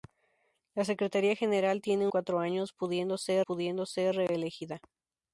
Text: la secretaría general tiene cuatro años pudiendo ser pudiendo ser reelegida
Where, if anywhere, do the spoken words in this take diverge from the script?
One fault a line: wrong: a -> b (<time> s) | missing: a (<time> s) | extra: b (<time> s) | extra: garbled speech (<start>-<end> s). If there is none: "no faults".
no faults